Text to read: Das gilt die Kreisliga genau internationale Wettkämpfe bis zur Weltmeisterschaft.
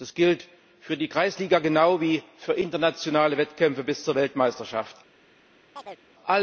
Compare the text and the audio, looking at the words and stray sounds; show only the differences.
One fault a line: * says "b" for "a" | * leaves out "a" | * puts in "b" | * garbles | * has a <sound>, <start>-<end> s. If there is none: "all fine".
* puts in "für"
* puts in "wie für"
* has a chirp, 5.8-6.0 s